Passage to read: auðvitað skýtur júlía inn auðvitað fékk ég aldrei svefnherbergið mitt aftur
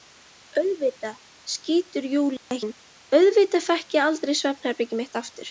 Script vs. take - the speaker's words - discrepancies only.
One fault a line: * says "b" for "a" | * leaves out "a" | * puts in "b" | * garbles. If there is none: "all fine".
all fine